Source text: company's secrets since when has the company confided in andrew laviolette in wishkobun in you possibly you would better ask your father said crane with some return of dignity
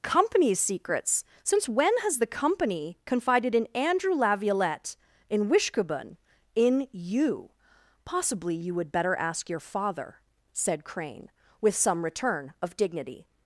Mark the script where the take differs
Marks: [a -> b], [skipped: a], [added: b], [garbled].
company's secrets since when has the company confided in andrew laviolette in wishkobun in you possibly you would better ask your father said crane with some return of dignity